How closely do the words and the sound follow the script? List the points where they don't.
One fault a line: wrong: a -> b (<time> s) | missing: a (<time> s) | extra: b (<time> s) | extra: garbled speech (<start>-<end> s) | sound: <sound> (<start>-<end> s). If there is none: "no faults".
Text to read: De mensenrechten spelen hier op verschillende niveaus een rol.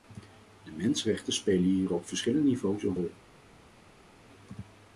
no faults